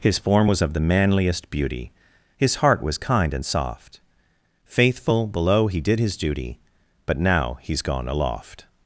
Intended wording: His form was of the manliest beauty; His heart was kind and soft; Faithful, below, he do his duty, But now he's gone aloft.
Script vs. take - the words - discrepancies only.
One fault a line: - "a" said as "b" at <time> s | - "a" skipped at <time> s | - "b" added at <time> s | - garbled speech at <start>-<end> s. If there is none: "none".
- "do" said as "did" at 5.8 s